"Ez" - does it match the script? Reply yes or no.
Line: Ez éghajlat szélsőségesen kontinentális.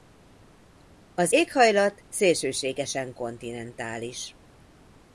no